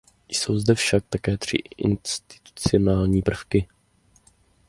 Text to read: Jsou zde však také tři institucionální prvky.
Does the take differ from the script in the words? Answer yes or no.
no